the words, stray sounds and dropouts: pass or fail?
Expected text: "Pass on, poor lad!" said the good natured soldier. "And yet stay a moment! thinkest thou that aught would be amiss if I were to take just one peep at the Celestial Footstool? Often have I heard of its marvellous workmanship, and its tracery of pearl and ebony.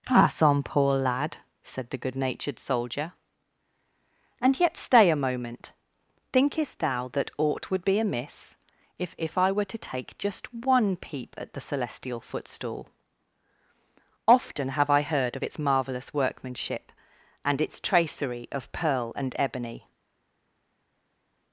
fail